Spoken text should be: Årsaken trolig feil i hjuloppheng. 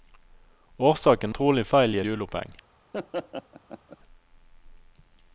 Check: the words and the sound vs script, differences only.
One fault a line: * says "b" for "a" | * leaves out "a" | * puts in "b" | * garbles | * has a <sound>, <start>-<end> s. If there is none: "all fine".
* has a laugh, 2.9-4.0 s